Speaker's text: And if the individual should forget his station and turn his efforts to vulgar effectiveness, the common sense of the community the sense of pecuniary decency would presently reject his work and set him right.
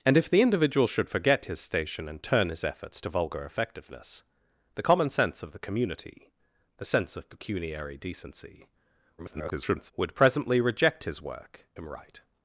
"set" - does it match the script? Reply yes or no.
no